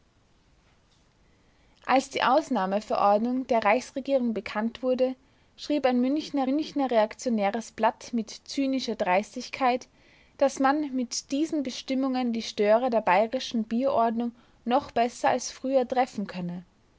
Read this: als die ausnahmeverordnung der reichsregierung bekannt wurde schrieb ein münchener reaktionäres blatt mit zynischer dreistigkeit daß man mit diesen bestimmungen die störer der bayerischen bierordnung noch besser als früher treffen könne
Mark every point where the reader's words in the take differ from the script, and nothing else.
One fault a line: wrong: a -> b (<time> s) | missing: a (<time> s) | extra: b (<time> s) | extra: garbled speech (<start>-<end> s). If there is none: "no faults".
extra: münchener (6.4 s)